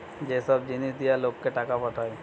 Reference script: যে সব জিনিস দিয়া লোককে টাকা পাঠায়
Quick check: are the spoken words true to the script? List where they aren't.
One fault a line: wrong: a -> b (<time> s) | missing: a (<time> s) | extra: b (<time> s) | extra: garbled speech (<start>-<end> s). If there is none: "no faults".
no faults